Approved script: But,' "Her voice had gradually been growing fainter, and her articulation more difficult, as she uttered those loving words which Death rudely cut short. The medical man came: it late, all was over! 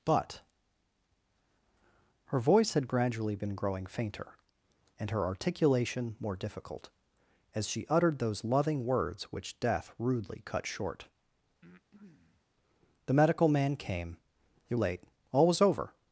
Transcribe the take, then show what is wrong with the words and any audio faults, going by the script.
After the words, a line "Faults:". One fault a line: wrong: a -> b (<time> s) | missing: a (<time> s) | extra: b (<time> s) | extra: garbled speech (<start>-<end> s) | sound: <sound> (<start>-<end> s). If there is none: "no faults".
But,' "Her voice had gradually been growing fainter, and her articulation more difficult, as she uttered those loving words which Death rudely cut short. The medical man came: it late, all was over!
Faults:
sound: breath (11.6-12.5 s)